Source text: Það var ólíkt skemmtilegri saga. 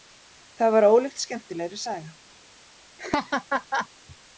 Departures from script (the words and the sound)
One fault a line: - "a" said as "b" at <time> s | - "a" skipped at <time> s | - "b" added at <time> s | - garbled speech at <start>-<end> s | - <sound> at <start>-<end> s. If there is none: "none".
- laugh at 3.0-3.9 s